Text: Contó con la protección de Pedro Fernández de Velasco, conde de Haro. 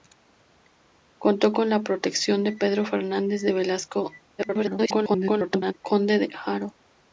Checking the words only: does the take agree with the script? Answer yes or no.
no